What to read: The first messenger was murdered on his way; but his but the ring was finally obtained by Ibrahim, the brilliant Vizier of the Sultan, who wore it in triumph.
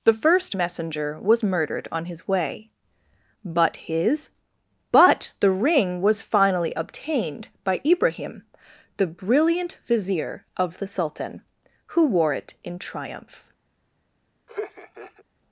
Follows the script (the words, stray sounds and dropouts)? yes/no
no